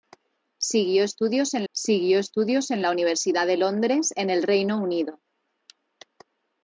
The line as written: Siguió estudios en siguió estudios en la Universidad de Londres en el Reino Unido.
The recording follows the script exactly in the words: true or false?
true